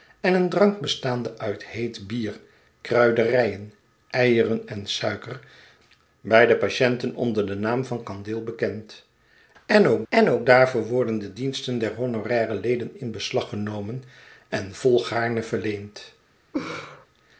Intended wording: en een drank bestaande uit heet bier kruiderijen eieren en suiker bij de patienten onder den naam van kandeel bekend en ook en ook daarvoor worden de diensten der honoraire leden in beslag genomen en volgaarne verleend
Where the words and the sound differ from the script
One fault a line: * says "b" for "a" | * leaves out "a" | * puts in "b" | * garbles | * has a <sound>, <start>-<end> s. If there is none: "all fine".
* has a laugh, 16.5-17.1 s